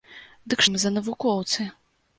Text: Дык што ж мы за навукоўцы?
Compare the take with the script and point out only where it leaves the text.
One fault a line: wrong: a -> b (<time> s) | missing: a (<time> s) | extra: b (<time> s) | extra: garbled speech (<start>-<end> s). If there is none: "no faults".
missing: што (0.6 s)